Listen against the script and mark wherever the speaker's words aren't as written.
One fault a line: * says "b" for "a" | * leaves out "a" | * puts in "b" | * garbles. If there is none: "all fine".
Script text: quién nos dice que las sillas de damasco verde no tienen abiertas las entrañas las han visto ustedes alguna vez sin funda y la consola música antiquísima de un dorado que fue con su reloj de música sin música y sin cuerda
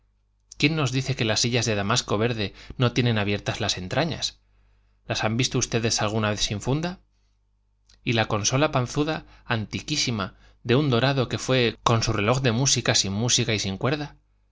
* says "panzuda" for "música"